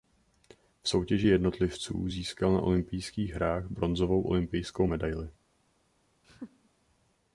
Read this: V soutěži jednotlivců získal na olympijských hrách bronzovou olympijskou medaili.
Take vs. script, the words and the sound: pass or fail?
fail